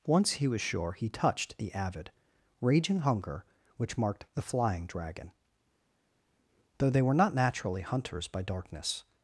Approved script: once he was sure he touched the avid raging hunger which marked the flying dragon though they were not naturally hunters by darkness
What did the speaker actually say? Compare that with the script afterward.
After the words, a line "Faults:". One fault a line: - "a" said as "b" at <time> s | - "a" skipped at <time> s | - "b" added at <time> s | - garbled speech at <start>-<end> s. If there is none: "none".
once he was sure he touched the avid raging hunger which marked the flying dragon though they were not naturally hunters by darkness
Faults:
none